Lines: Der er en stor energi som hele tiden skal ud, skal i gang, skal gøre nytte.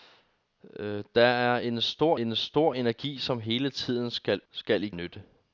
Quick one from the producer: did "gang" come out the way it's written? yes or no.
no